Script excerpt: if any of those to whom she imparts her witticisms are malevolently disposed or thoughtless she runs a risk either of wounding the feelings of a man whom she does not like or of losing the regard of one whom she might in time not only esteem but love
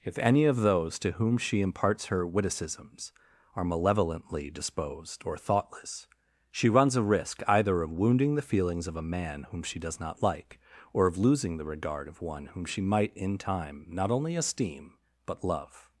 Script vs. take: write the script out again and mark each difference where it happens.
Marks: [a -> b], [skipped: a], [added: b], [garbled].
if any of those to whom she imparts her witticisms are malevolently disposed or thoughtless she runs a risk either of wounding the feelings of a man whom she does not like or of losing the regard of one whom she might in time not only esteem but love